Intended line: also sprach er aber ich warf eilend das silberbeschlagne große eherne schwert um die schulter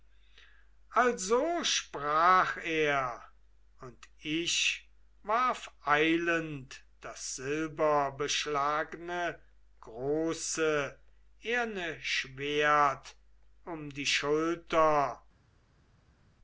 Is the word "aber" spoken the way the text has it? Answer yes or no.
no